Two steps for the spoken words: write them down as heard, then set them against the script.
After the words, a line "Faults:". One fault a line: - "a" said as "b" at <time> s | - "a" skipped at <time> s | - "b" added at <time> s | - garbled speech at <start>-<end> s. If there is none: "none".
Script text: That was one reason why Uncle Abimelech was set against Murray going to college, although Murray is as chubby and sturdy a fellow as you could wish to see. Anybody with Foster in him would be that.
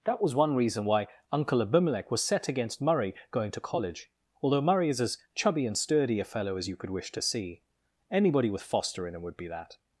That was one reason why Uncle Abimelech was set against Murray going to college, although Murray is as chubby and sturdy a fellow as you could wish to see. Anybody with Foster in him would be that.
Faults:
none